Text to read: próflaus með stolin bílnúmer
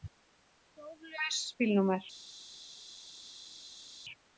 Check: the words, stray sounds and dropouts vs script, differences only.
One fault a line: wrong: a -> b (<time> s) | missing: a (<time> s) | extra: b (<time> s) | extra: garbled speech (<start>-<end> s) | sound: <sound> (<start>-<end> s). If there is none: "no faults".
missing: með stolin (1.4 s)